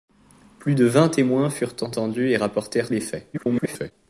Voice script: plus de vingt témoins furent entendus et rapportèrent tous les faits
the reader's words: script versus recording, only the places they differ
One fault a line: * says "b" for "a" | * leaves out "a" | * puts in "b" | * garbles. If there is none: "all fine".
* leaves out "tous"
* garbles